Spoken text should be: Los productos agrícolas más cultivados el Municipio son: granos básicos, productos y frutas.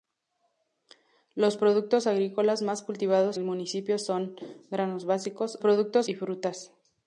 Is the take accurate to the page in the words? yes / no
yes